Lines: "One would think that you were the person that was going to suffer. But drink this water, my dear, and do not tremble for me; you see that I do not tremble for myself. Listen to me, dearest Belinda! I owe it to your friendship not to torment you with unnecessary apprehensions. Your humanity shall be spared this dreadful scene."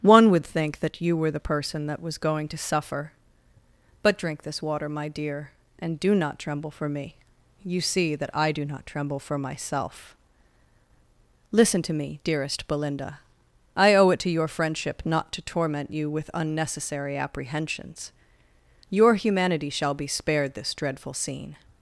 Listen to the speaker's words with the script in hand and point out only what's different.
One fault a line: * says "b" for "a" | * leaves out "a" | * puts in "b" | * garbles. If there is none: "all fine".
all fine